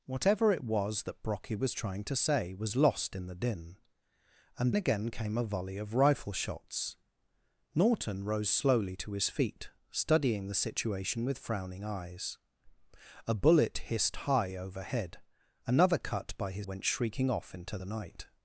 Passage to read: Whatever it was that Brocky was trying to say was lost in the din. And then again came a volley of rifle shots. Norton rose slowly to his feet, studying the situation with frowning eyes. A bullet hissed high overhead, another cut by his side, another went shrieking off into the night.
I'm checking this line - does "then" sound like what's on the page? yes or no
no